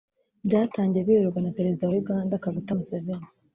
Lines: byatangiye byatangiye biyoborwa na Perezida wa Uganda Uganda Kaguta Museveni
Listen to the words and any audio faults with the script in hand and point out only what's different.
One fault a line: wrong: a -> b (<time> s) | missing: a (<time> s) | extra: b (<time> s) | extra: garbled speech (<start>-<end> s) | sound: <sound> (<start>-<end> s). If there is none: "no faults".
missing: byatangiye (1.0 s)
missing: Uganda (2.4 s)